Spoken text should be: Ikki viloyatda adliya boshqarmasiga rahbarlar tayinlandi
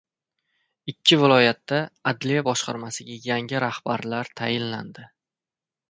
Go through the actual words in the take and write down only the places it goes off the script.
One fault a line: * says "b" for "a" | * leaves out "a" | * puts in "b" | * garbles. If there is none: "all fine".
* puts in "yangi"